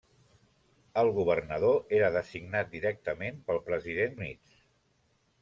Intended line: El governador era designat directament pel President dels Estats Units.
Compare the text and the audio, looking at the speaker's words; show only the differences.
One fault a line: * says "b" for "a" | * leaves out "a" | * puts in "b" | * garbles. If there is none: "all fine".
* leaves out "dels Estats"